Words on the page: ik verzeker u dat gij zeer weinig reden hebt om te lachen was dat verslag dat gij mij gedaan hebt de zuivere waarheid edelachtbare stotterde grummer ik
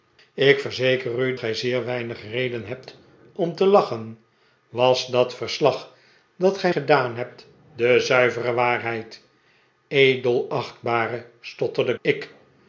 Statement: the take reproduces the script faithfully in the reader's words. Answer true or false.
false